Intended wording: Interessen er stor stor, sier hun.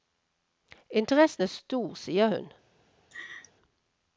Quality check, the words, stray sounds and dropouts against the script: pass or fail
fail